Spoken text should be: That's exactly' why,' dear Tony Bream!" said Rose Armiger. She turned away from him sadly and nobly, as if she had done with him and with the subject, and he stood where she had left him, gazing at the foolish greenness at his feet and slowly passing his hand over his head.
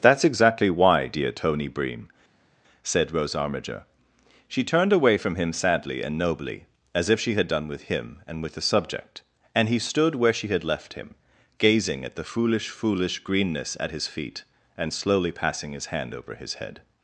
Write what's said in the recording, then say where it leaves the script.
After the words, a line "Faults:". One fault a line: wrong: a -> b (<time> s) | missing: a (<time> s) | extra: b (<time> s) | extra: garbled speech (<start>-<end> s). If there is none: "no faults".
That's exactly' why,' dear Tony Bream!" said Rose Armiger. She turned away from him sadly and nobly, as if she had done with him and with the subject, and he stood where she had left him, gazing at the foolish foolish greenness at his feet and slowly passing his hand over his head.
Faults:
extra: foolish (12.7 s)